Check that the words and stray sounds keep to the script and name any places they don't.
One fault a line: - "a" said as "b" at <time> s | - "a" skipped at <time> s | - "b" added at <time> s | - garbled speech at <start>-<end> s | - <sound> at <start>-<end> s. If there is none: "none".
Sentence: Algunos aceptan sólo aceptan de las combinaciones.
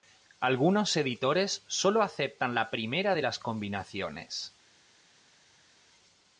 - "aceptan" said as "editores" at 1.0 s
- "la primera" added at 2.5 s